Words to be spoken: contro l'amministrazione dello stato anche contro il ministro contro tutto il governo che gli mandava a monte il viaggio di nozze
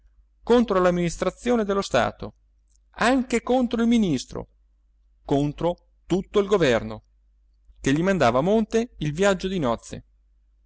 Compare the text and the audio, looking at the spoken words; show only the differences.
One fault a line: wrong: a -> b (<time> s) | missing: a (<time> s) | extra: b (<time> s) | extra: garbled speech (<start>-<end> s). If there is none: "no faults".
no faults